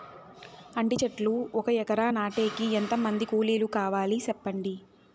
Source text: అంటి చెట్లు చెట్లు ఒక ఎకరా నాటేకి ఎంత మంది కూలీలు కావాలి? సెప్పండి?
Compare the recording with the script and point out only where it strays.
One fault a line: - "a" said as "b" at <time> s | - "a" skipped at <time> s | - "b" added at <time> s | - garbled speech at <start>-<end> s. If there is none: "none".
- "చెట్లు" skipped at 1.3 s